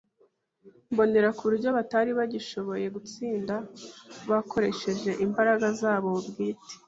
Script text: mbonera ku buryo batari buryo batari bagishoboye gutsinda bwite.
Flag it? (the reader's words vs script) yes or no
yes